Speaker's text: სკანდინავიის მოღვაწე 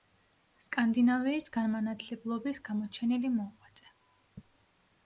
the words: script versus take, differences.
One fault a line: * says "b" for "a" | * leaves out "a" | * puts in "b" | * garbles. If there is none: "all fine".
* puts in "განმანათლებლობის გამოჩენილი"